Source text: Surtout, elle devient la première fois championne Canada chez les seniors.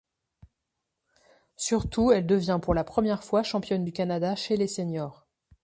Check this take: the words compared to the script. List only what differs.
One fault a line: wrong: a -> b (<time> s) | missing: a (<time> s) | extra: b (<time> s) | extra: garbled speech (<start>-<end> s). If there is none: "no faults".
extra: pour (2.6 s)
extra: du (3.8 s)